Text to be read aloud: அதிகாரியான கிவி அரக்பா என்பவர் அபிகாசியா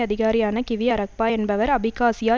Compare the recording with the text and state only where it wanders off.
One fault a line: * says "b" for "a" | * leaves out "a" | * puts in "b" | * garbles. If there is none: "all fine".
all fine